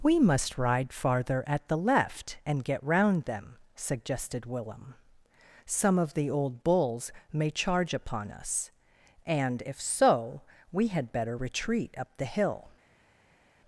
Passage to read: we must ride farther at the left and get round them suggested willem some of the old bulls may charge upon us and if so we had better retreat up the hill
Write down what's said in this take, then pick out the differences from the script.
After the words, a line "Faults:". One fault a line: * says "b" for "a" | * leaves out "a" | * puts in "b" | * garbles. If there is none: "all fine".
we must ride farther at the left and get round them suggested willem some of the old bulls may charge upon us and if so we had better retreat up the hill
Faults:
all fine